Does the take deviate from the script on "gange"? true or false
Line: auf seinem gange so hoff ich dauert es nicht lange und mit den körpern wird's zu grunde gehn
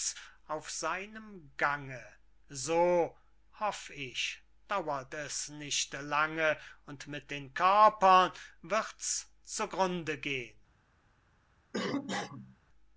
false